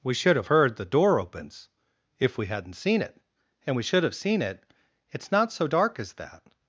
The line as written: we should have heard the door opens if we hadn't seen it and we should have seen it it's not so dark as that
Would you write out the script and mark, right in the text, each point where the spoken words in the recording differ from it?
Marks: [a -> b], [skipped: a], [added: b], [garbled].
we should have heard the door opens if we hadn't seen it and we should have seen it it's not so dark as that